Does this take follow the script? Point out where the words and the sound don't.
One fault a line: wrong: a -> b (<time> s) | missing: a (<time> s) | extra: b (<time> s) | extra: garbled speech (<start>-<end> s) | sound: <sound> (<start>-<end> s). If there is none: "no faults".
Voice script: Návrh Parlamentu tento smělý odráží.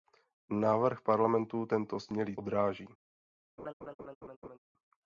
sound: laugh (3.6-4.6 s)